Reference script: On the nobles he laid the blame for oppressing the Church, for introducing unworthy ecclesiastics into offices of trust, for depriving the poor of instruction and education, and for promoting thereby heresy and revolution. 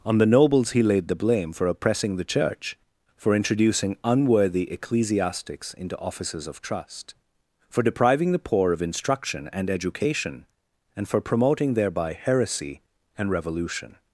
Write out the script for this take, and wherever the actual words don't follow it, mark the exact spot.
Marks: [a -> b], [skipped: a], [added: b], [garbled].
On the nobles he laid the blame for oppressing the Church, for introducing unworthy ecclesiastics into offices of trust, for depriving the poor of instruction and education, and for promoting thereby heresy and revolution.